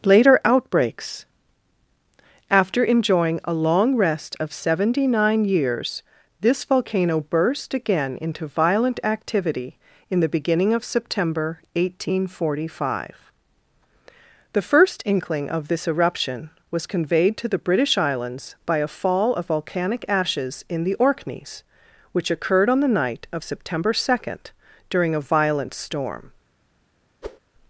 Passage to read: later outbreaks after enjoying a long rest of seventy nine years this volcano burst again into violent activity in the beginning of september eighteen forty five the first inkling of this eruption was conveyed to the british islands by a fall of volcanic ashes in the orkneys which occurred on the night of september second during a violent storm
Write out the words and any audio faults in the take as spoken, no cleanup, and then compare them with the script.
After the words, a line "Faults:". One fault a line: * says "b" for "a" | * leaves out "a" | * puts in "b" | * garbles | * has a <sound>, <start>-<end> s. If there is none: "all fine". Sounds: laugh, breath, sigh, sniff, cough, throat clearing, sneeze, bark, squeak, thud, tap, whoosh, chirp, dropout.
later outbreaks after enjoying a long rest of seventy nine years this volcano burst again into violent activity in the beginning of september eighteen forty five the first inkling of this eruption was conveyed to the british islands by a fall of volcanic ashes in the orkneys which occurred on the night of september second during a violent storm
Faults:
* has a whoosh, 27.2-27.4 s